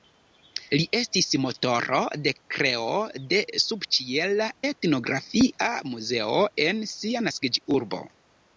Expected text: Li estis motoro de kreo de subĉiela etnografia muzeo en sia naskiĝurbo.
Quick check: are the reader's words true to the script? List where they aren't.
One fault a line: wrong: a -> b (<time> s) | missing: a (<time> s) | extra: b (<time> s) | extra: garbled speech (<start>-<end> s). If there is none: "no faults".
no faults